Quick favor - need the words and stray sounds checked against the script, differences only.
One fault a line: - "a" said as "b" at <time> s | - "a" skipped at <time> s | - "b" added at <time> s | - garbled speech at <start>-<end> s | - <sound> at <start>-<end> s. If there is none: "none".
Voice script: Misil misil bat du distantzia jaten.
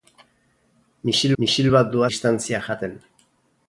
none